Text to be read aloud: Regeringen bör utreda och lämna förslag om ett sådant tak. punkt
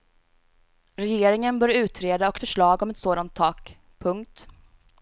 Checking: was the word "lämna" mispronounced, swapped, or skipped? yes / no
yes